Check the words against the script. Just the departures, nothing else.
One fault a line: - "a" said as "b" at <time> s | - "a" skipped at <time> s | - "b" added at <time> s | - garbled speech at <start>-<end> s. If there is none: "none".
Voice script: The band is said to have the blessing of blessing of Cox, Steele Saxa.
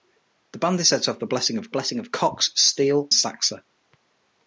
none